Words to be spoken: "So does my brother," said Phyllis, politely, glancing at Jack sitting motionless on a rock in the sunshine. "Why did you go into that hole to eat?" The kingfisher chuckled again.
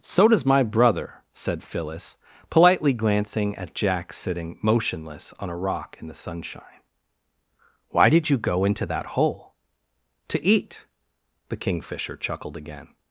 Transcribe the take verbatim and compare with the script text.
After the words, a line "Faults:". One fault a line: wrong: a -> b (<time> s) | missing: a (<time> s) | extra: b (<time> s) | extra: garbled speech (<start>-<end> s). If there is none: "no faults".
"So does my brother," said Phyllis, politely, glancing at Jack sitting motionless on a rock in the sunshine. "Why did you go into that hole to eat?" The kingfisher chuckled again.
Faults:
no faults